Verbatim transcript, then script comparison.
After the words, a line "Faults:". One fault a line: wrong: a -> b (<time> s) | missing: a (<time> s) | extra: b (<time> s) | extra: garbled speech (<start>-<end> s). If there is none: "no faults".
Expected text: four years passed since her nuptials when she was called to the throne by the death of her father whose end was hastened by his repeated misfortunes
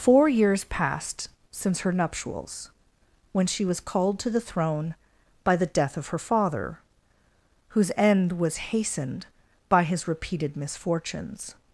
four years passed since her nuptials when she was called to the throne by the death of her father whose end was hastened by his repeated misfortunes
Faults:
no faults